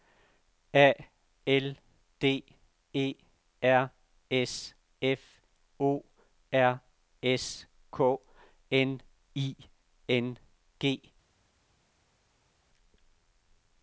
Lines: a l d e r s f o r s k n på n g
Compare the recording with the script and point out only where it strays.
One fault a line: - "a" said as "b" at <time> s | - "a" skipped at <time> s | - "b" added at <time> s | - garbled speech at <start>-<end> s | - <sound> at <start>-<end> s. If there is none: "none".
- "på" said as "i" at 9.4 s